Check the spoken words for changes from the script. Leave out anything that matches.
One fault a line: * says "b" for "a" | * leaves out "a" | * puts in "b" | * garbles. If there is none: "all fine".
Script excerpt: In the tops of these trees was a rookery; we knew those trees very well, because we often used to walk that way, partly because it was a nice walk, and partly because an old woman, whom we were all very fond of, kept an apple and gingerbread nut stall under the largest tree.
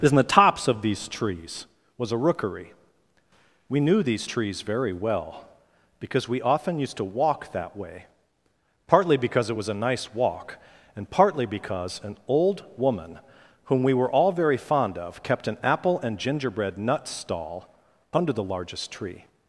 * says "these" for "those"